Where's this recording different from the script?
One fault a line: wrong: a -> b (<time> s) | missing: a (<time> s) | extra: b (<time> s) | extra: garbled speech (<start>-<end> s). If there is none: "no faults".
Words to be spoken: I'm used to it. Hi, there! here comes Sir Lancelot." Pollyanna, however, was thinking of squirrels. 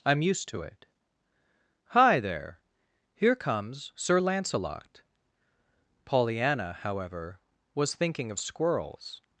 no faults